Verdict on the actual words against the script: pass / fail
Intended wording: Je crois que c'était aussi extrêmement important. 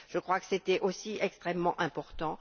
pass